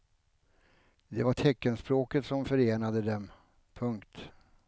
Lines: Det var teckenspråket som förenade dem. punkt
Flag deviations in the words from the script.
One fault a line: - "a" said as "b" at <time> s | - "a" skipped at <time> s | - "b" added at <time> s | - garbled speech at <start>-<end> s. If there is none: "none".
none